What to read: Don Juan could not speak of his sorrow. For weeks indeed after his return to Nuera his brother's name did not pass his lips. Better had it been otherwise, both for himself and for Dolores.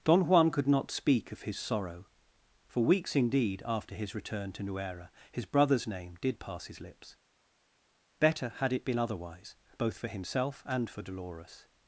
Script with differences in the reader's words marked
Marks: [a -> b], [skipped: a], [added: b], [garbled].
Don Juan could not speak of his sorrow. For weeks indeed after his return to Nuera his brother's name did [skipped: not] pass his lips. Better had it been otherwise, both for himself and for Dolores.